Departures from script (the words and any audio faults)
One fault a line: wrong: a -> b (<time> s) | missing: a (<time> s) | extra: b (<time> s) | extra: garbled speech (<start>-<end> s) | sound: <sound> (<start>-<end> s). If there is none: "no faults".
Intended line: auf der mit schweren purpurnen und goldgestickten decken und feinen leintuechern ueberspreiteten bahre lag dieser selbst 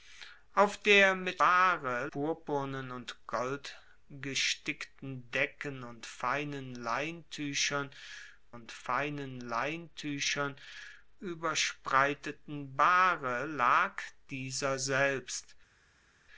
wrong: schweren -> bahre (1.4 s)
extra: und feinen leintuechern (8.5 s)